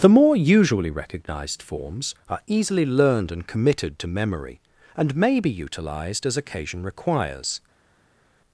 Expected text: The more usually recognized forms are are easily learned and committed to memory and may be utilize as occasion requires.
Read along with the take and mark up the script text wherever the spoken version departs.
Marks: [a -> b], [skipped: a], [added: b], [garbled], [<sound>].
The more usually recognized forms are [skipped: are] easily learned and committed to memory and may be [utilize -> utilized] as occasion requires.